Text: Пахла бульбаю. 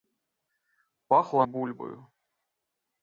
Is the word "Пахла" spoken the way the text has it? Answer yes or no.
yes